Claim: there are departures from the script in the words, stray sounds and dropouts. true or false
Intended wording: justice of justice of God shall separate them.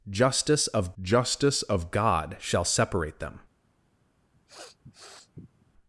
true